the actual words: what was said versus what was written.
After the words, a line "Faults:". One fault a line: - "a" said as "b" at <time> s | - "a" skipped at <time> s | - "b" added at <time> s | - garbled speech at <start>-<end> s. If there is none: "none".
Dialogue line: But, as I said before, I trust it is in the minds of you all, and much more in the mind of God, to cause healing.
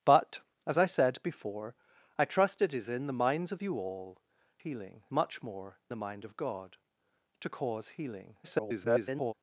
But, as I said before, I trust it is in the minds of you all, healing much more the mind of God, to cause healing. [garbled]
Faults:
- "and" said as "healing" at 4.6 s
- "in" skipped at 5.8 s
- garbled speech at 8.4-9.3 s